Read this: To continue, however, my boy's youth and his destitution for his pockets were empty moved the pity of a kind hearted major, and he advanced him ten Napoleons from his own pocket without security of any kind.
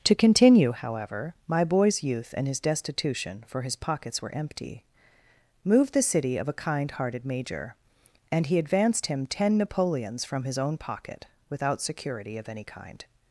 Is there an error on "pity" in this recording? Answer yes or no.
yes